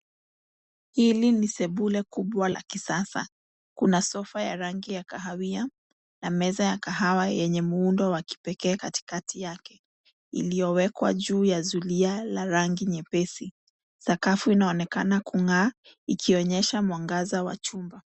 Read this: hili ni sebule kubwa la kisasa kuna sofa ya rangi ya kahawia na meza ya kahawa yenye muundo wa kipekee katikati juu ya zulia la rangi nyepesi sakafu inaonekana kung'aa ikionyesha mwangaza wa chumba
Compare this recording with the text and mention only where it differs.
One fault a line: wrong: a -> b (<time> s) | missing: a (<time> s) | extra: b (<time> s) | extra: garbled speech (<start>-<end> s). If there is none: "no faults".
extra: yake iliyowekwa (9.4 s)